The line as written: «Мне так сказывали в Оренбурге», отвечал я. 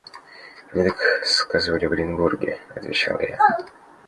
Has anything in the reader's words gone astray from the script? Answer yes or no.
no